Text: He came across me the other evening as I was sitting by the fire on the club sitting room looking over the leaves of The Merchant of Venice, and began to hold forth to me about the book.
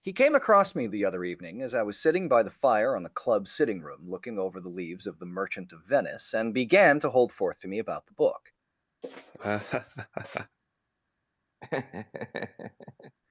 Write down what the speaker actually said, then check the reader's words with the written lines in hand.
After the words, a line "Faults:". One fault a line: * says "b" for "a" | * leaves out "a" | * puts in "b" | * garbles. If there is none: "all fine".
He came across me the other evening as I was sitting by the fire on the club sitting room looking over the leaves of The Merchant of Venice, and began to hold forth to me about the book.
Faults:
all fine